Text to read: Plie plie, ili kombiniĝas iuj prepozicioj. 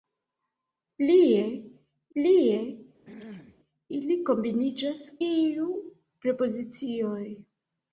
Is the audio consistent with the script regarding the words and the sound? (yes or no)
no